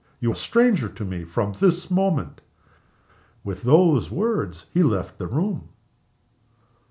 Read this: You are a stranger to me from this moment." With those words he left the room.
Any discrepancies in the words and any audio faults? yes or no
yes